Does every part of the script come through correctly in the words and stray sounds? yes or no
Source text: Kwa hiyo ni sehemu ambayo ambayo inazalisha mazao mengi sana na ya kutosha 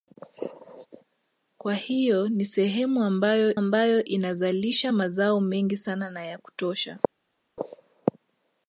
yes